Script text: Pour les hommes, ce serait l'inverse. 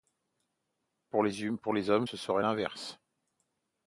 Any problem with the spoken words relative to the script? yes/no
no